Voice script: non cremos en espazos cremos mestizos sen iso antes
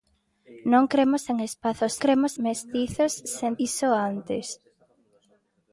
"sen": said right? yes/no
yes